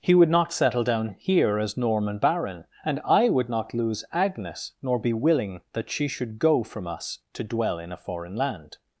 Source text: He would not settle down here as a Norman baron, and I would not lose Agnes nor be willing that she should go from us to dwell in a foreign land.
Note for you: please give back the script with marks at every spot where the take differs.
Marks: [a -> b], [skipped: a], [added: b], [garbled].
He would not settle down here as [skipped: a] Norman baron, and I would not lose Agnes nor be willing that she should go from us to dwell in a foreign land.